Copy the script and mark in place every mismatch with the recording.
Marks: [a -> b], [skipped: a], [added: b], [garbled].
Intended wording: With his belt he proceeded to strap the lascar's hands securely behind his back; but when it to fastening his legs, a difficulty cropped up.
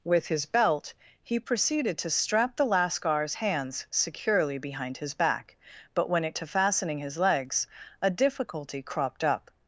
With his belt he proceeded to strap the lascar's hands securely behind his back; but when it to fastening his legs, a difficulty cropped up.